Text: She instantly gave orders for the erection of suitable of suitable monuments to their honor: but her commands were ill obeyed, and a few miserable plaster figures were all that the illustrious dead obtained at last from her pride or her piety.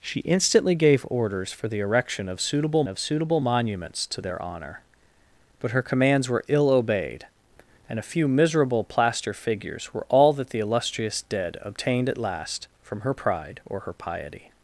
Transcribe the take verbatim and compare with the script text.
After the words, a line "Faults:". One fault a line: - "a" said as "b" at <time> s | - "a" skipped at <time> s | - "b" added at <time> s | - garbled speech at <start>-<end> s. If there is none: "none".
She instantly gave orders for the erection of suitable of suitable monuments to their honor: but her commands were ill obeyed, and a few miserable plaster figures were all that the illustrious dead obtained at last from her pride or her piety.
Faults:
none